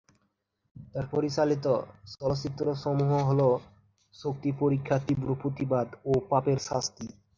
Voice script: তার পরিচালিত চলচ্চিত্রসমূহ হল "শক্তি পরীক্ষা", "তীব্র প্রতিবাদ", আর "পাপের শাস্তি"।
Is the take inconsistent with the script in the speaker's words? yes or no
yes